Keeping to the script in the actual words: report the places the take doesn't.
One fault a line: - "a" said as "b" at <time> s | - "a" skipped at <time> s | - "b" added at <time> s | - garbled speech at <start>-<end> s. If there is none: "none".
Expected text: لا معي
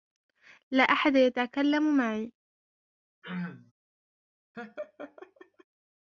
- "أحد يتكلم" added at 0.8 s